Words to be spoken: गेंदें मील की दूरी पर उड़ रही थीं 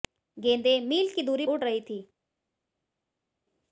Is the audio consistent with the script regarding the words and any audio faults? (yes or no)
no